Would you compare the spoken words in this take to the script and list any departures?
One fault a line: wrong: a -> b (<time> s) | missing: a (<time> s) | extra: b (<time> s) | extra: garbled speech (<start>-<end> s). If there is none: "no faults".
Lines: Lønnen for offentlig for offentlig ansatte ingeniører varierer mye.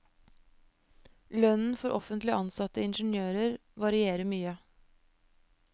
missing: for offentlig (2.3 s)